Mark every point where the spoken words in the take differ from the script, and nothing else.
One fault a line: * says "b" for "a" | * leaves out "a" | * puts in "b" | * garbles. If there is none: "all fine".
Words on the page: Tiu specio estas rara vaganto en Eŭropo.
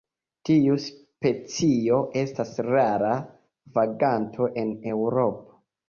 all fine